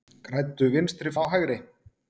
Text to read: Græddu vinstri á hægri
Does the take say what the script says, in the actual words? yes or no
yes